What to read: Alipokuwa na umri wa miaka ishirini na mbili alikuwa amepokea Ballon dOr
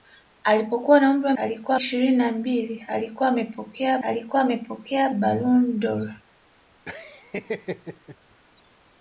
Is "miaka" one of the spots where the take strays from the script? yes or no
yes